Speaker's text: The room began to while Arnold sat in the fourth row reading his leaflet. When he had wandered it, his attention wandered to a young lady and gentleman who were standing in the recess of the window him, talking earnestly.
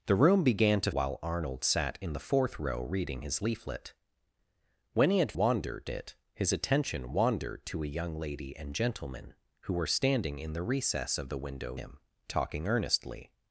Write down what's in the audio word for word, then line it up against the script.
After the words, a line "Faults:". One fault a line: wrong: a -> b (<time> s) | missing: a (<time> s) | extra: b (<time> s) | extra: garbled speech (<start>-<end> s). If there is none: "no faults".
The room began to while Arnold sat in the fourth row reading his leaflet. When he had wandered it, his attention wandered to a young lady and gentleman who were standing in the recess of the window him, talking earnestly.
Faults:
no faults